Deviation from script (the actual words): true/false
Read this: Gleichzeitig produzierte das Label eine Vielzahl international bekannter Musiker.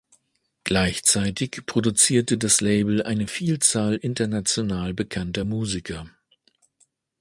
false